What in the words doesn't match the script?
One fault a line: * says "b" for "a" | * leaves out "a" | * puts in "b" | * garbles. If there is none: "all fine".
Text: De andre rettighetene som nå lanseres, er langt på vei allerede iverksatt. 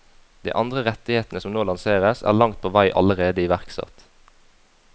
all fine